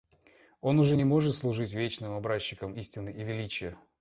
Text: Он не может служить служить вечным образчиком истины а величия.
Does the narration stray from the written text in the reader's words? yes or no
yes